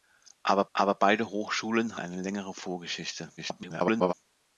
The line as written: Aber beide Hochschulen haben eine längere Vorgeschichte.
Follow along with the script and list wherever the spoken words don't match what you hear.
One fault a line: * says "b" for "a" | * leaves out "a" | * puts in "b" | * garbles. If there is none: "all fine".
* puts in "aber"
* leaves out "haben"
* garbles